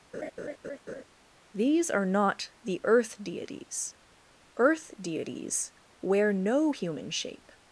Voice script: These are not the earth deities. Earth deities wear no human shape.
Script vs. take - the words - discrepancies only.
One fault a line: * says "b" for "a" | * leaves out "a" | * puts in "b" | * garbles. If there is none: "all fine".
all fine